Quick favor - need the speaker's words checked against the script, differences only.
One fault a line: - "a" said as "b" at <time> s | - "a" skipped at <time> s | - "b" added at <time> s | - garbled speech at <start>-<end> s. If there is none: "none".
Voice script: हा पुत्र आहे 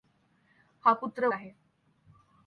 none